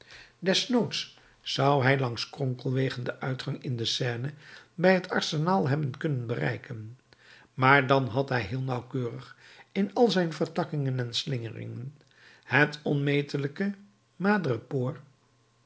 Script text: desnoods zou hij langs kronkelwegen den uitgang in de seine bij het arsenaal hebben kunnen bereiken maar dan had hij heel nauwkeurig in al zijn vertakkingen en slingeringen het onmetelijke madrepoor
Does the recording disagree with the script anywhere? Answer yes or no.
no